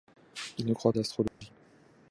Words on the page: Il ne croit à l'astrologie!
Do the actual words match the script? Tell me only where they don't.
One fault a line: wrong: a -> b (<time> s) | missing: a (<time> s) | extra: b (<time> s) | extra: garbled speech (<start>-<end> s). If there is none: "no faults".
no faults